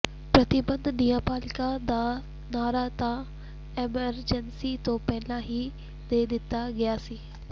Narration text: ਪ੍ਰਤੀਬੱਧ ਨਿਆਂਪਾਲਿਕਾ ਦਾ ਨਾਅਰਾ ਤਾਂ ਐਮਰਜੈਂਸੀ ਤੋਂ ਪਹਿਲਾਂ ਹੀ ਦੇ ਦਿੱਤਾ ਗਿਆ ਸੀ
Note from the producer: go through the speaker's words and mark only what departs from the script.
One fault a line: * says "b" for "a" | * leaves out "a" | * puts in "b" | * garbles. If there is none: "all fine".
all fine